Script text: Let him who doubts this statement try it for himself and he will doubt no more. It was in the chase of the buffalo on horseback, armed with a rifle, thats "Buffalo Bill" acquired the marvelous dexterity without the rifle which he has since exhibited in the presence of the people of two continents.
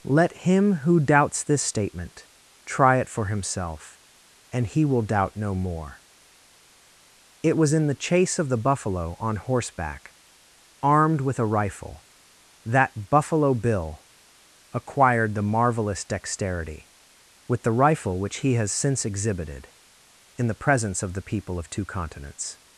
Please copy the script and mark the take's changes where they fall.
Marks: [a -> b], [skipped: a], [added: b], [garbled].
Let him who doubts this statement try it for himself and he will doubt no more. It was in the chase of the buffalo on horseback, armed with a rifle, [thats -> that] "Buffalo Bill" acquired the marvelous dexterity [without -> with] the rifle which he has since exhibited in the presence of the people of two continents.